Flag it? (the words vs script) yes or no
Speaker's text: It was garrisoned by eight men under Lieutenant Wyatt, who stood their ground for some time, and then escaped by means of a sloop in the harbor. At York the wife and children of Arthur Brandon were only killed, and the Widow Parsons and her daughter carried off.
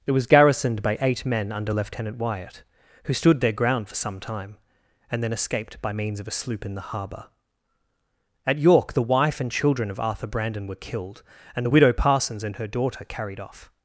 yes